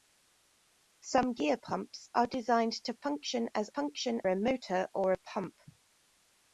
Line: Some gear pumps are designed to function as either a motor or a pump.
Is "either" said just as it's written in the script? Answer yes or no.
no